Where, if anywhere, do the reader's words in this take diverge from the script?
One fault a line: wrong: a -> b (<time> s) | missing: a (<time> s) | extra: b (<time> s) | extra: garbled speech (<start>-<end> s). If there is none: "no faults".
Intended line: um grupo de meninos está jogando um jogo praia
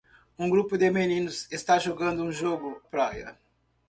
no faults